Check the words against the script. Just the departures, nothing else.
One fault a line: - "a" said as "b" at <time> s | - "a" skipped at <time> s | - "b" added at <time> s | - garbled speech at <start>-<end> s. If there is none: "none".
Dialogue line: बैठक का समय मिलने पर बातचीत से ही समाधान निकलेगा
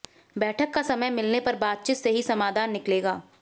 none